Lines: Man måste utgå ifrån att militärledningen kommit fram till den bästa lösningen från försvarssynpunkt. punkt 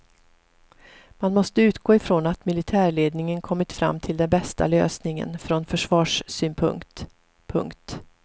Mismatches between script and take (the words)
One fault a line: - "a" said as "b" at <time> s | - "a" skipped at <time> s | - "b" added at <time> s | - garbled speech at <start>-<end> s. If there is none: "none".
none